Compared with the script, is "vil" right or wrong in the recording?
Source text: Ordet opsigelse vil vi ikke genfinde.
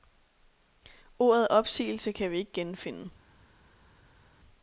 wrong